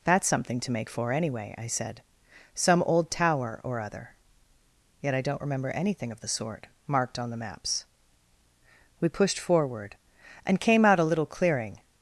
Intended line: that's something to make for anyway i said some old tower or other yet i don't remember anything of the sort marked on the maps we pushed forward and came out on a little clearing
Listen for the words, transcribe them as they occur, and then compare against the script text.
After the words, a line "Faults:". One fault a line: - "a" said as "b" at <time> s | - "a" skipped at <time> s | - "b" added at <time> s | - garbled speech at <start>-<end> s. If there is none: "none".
that's something to make for anyway i said some old tower or other yet i don't remember anything of the sort marked on the maps we pushed forward and came out a little clearing
Faults:
- "on" skipped at 11.0 s